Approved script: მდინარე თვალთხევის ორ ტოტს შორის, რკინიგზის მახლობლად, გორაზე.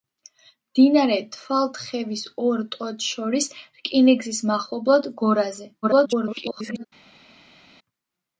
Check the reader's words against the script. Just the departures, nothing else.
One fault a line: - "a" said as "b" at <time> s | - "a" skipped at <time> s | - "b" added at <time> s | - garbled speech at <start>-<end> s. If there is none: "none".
- garbled speech at 5.8-6.9 s